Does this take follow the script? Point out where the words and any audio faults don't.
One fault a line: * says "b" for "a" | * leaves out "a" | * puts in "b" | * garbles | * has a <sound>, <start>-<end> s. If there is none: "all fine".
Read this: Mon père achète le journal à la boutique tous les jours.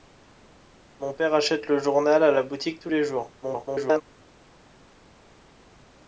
* garbles